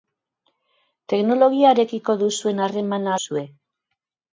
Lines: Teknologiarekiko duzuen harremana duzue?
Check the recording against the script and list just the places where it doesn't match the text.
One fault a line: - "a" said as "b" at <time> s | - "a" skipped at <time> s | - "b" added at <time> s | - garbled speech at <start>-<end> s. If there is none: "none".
none